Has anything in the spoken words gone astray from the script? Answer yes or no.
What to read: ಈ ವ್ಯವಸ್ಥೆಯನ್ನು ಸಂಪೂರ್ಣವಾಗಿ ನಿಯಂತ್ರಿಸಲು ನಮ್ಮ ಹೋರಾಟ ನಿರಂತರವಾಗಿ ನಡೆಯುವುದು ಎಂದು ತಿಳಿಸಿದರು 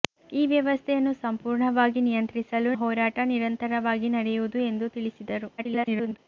yes